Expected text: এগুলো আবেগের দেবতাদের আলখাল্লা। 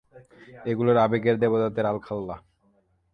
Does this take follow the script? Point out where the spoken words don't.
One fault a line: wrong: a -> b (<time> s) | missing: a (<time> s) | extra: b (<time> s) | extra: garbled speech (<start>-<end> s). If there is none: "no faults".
no faults